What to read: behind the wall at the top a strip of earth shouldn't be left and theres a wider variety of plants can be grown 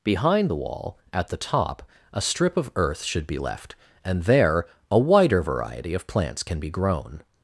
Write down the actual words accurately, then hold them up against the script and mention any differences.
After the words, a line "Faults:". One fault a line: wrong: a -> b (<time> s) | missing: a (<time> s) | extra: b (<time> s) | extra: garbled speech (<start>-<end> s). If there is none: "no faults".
behind the wall at the top a strip of earth should be left and there a wider variety of plants can be grown
Faults:
wrong: shouldn't -> should (3.0 s)
wrong: theres -> there (4.2 s)